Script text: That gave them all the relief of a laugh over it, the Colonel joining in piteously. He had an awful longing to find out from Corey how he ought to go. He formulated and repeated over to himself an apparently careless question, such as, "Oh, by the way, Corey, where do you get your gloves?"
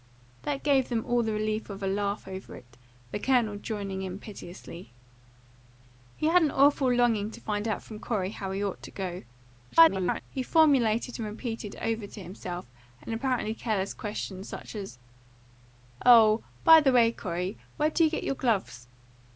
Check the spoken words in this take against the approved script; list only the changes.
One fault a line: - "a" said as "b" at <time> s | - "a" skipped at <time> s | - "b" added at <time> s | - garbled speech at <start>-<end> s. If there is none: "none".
- garbled speech at 9.7-10.2 s